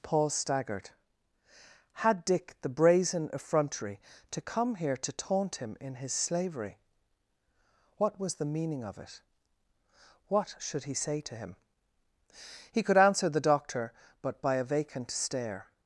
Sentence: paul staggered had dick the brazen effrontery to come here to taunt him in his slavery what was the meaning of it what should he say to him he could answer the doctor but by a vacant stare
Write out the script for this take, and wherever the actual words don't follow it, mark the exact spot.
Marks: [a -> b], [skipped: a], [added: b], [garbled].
paul staggered had dick the brazen effrontery to come here to taunt him in his slavery what was the meaning of it what should he say to him he could answer the doctor but by a vacant stare